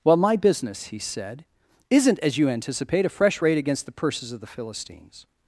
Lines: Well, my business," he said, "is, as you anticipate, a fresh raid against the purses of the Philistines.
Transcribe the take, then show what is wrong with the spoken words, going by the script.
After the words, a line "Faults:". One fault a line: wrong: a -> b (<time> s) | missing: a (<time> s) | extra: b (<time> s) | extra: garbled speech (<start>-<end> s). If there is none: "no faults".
Well, my business," he said, "isn't, as you anticipate, a fresh raid against the purses of the Philistines.
Faults:
wrong: is -> isn't (1.9 s)